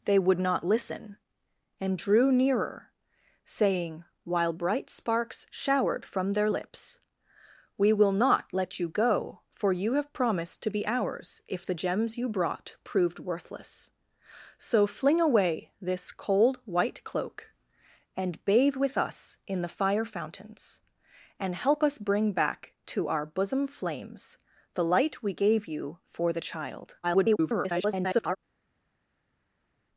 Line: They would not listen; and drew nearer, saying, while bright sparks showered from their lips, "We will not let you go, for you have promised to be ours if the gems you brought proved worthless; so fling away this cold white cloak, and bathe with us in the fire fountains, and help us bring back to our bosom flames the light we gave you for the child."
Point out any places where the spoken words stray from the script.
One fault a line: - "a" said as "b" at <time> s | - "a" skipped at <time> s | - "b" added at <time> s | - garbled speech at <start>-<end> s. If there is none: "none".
- garbled speech at 27.0-28.4 s